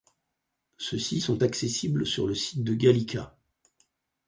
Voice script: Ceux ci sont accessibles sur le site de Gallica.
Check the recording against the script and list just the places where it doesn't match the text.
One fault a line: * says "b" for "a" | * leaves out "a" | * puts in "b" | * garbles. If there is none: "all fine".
all fine